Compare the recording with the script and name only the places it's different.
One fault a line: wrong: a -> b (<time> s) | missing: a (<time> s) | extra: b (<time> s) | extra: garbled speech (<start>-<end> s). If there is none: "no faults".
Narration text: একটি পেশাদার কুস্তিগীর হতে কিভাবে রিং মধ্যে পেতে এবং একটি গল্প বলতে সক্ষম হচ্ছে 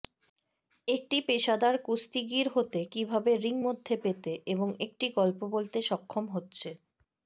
no faults